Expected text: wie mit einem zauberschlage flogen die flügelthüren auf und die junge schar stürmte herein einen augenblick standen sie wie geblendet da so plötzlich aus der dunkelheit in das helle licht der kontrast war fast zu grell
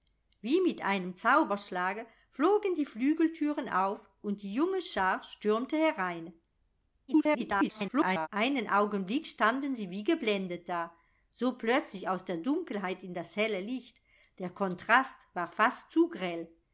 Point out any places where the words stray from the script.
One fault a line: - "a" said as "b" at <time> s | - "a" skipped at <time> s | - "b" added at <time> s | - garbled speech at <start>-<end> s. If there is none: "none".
- garbled speech at 7.1-8.3 s